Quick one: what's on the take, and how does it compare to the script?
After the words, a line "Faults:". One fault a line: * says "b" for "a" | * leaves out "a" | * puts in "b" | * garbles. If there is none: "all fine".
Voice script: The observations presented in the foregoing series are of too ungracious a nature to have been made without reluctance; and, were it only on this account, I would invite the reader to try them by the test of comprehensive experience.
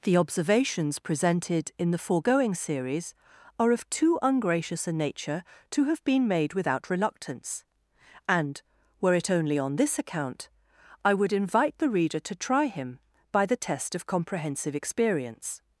The observations presented in the foregoing series are of too ungracious a nature to have been made without reluctance; and, were it only on this account, I would invite the reader to try him by the test of comprehensive experience.
Faults:
* says "him" for "them"